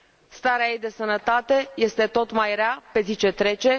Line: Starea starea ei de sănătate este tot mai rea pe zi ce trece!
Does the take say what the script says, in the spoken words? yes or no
no